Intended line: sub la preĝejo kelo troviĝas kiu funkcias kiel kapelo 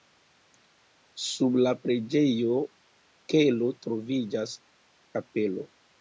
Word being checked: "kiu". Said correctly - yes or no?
no